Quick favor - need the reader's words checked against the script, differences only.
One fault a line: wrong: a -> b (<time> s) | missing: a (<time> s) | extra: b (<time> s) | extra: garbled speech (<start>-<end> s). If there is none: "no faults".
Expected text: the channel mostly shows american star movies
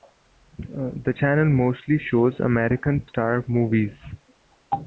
no faults